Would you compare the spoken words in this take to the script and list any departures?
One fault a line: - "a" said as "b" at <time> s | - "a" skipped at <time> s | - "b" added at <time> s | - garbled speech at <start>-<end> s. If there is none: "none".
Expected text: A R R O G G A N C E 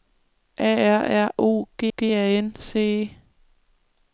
none